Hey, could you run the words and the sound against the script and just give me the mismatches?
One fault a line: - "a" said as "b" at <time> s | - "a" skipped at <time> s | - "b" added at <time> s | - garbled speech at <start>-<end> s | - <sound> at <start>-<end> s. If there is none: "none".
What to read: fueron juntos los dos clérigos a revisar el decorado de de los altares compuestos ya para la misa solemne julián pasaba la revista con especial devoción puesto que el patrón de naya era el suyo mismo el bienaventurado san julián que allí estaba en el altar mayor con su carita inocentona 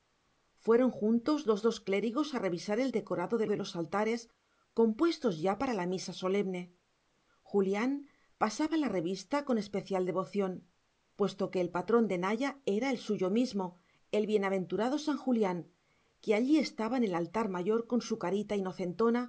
none